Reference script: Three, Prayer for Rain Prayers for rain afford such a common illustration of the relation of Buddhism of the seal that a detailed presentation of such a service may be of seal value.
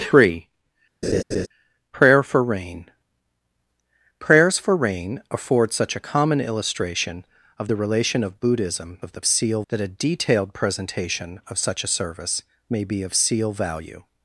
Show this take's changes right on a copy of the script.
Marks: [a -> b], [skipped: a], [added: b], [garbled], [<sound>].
Three, [laugh] Prayer for Rain Prayers for rain afford such a common illustration of the relation of Buddhism of the seal that a detailed presentation of such a service may be of seal value.